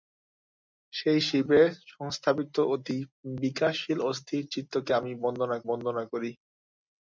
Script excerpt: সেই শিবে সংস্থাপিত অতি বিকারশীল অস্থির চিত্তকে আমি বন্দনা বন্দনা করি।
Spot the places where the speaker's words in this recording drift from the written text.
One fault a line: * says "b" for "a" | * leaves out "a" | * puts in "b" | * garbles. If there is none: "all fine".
all fine